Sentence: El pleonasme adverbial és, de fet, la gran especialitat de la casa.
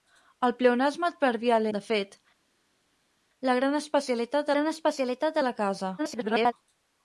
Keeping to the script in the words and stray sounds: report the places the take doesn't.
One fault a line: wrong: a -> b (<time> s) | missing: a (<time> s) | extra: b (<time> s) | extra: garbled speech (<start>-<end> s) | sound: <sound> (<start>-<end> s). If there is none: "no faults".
missing: és (1.7 s)
extra: gran especialitat (4.5 s)
extra: garbled speech (6.0-6.5 s)